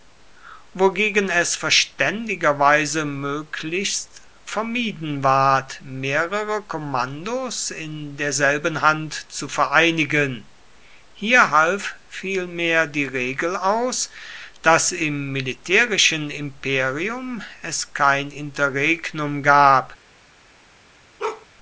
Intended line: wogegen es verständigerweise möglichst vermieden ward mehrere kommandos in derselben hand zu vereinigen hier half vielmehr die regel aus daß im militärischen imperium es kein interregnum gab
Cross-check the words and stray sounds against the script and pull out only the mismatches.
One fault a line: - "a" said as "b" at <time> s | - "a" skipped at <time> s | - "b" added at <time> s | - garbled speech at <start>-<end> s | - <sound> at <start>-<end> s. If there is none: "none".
- bark at 21.2-21.5 s